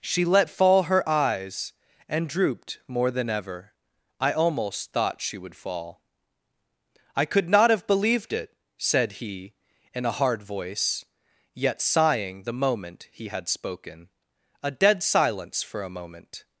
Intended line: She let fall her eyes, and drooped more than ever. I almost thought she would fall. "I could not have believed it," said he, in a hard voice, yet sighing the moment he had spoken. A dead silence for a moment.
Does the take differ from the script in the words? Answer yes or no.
no